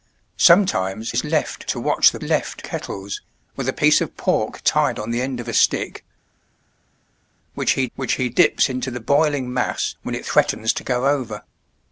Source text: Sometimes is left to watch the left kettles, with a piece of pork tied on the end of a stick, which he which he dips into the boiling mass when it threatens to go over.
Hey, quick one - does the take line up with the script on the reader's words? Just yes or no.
yes